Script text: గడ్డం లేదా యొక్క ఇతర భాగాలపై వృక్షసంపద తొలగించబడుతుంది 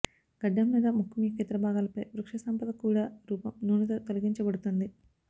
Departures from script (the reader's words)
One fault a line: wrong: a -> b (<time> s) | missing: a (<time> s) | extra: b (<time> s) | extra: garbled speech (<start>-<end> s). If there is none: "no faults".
extra: ముఖం (0.9 s)
extra: కూడా రూపం నూనెతో (2.8 s)